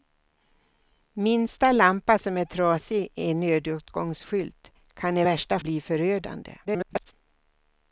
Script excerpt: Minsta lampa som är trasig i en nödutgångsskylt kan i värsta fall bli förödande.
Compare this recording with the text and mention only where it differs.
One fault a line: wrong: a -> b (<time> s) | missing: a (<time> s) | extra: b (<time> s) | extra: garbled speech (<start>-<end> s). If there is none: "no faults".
missing: fall (5.6 s)
extra: garbled speech (6.7-7.1 s)